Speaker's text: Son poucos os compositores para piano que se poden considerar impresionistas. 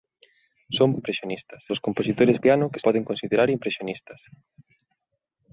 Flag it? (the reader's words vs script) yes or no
yes